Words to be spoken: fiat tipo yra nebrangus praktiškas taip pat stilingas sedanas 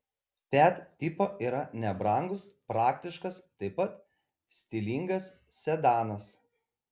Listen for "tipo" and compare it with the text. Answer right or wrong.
right